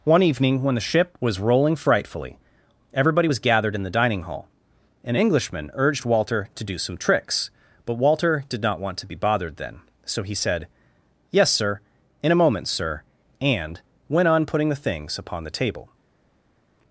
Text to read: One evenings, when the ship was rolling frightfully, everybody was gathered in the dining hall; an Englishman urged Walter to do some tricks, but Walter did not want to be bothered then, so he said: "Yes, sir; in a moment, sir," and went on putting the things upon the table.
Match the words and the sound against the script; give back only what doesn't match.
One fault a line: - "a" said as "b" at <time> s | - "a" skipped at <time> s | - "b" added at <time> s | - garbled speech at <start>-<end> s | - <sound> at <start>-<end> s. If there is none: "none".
- "evenings" said as "evening" at 0.2 s